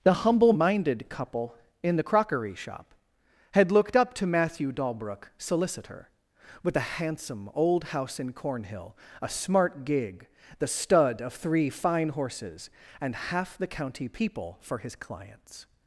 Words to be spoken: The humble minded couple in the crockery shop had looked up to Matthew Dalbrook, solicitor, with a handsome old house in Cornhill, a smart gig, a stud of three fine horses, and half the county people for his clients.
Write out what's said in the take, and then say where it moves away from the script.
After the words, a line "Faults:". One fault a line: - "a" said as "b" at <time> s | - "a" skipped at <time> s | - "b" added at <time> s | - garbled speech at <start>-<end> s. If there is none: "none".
The humble minded couple in the crockery shop had looked up to Matthew Dalbrook, solicitor, with a handsome old house in Cornhill, a smart gig, the stud of three fine horses, and half the county people for his clients.
Faults:
- "a" said as "the" at 10.6 s